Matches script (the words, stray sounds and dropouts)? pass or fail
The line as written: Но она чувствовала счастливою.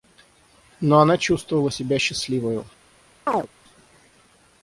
fail